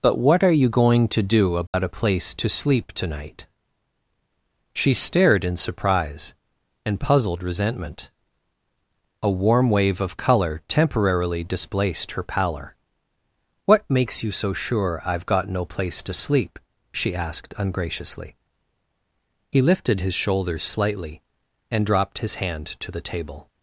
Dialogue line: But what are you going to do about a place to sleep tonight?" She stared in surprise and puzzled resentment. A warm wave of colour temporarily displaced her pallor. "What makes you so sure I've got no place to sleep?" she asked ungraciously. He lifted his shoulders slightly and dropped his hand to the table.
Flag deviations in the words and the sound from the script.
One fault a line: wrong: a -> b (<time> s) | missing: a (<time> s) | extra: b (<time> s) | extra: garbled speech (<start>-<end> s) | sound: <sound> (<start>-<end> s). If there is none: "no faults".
sound: dropout (1.7-1.7 s)